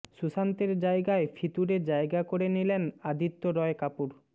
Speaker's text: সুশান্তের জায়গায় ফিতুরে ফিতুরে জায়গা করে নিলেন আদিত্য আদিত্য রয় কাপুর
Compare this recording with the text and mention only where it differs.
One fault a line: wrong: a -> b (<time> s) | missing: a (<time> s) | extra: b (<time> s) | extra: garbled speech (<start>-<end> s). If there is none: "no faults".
missing: ফিতুরে (1.8 s)
missing: আদিত্য (3.4 s)